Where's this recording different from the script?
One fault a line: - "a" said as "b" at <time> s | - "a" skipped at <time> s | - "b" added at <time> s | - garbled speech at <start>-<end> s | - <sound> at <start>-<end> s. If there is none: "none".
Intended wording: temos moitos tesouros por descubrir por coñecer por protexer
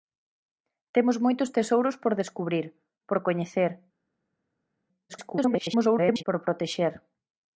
- garbled speech at 5.1-6.2 s